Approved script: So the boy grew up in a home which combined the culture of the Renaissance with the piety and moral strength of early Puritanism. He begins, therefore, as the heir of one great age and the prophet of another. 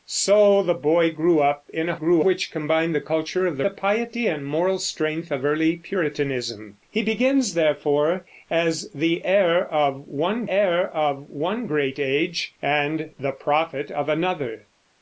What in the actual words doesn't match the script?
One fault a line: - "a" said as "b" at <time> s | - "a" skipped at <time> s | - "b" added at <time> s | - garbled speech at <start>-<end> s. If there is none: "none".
- "home" said as "grew" at 1.9 s
- "Renaissance with" skipped at 3.6 s
- "heir of one" added at 10.5 s